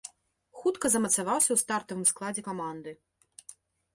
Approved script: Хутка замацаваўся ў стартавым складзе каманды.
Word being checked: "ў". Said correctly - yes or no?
yes